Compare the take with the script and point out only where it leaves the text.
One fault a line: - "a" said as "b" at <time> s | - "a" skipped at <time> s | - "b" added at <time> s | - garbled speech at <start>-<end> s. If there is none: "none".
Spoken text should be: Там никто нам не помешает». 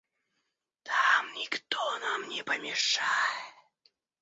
none